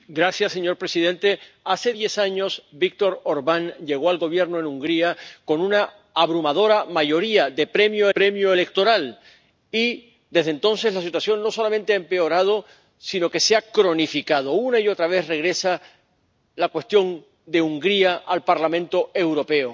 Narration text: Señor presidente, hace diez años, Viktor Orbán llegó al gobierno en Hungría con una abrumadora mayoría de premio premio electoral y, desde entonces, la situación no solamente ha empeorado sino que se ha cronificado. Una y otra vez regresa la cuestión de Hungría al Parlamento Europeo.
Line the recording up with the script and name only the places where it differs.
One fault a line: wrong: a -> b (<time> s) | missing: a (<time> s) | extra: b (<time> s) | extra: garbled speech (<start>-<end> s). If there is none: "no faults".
no faults